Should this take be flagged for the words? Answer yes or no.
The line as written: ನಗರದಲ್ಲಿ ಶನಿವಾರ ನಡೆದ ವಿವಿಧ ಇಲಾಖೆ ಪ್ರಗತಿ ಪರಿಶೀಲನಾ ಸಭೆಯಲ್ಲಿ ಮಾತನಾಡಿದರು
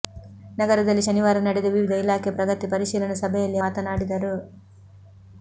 no